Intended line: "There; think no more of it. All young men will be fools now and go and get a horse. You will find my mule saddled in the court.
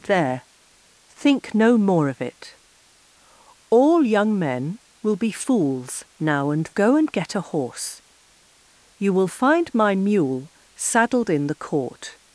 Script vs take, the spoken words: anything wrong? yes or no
no